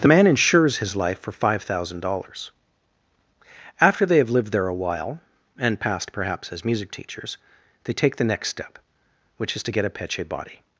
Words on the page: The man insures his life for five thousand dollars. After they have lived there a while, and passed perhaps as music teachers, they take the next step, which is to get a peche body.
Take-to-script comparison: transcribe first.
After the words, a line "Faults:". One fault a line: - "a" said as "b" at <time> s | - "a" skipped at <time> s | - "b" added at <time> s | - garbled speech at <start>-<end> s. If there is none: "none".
The man insures his life for five thousand dollars. After they have lived there a while, and passed perhaps as music teachers, they take the next step, which is to get a peche body.
Faults:
none